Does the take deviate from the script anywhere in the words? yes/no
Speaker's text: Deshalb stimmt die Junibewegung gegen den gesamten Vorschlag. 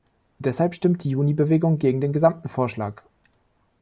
no